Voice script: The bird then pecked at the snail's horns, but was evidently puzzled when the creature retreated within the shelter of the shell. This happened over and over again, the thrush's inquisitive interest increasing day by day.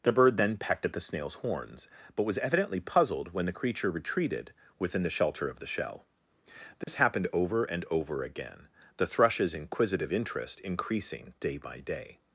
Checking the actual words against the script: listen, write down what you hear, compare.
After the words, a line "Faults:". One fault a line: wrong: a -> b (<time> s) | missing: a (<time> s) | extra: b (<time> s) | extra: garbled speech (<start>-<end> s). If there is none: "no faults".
The bird then pecked at the snail's horns, but was evidently puzzled when the creature retreated within the shelter of the shell. This happened over and over again, the thrush's inquisitive interest increasing day by day.
Faults:
no faults